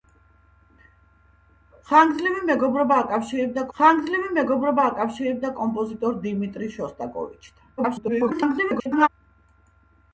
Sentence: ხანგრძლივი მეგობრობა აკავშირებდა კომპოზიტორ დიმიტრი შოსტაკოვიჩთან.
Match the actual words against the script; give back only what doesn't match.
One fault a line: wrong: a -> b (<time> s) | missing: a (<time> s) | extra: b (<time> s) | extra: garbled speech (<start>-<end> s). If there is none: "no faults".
extra: ხანგრძლივი მეგობრობა აკავშირებდა (3.8 s)
extra: garbled speech (7.8-9.1 s)